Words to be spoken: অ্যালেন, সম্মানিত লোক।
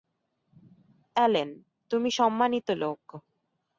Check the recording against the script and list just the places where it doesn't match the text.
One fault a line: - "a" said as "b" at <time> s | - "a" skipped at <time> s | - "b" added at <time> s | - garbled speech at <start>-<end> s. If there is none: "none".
- "তুমি" added at 1.9 s